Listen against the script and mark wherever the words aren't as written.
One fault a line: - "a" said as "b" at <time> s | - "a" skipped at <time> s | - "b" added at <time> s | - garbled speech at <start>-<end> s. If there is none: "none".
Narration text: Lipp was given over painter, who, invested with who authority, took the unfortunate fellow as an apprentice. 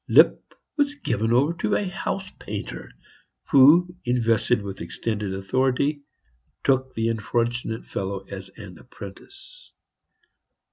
- "to a house" added at 1.6 s
- "who" said as "extended" at 4.8 s